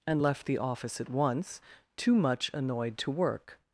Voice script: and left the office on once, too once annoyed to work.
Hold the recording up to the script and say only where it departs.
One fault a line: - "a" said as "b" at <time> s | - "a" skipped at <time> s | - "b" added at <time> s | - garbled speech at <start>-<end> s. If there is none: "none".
- "on" said as "at" at 1.0 s
- "once" said as "much" at 2.2 s